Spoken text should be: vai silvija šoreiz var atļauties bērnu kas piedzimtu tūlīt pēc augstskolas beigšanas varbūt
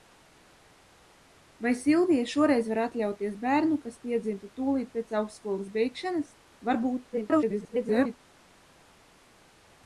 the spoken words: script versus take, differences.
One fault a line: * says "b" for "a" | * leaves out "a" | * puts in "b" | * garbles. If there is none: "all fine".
* garbles